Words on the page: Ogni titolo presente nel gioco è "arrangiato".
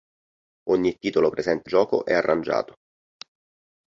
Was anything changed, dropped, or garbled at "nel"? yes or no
yes